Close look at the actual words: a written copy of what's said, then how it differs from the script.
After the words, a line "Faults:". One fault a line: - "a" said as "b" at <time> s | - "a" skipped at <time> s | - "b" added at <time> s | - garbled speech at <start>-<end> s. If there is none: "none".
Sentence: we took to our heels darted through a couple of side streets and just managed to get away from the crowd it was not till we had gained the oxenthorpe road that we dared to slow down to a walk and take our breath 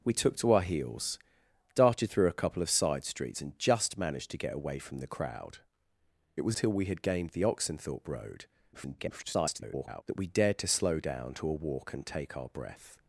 we took to our heels darted through a couple of side streets and just managed to get away from the crowd it was till we had gained the oxenthorpe road [garbled] that we dared to slow down to a walk and take our breath
Faults:
- "not" skipped at 6.6 s
- garbled speech at 8.7-10.0 s